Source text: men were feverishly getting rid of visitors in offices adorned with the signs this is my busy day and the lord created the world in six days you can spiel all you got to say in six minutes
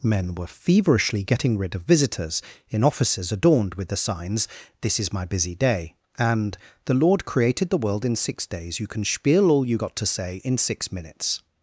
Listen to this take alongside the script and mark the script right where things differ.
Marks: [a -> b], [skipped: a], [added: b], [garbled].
men were feverishly getting rid of visitors in offices adorned with the signs this is my busy day and the lord created the world in six days you can spiel all you got to say in six minutes